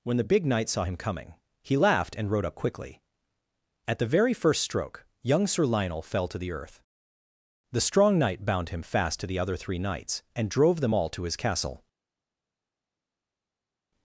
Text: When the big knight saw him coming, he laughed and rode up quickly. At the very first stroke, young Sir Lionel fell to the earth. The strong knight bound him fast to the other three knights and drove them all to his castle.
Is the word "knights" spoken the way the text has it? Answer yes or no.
yes